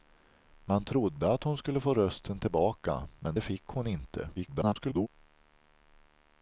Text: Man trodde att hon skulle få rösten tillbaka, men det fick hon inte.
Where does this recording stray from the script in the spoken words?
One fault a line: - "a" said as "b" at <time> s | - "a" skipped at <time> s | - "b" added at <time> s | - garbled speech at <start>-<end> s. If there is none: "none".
- garbled speech at 4.4-5.1 s